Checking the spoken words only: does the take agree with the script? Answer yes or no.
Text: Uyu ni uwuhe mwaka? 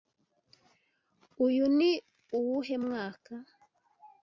yes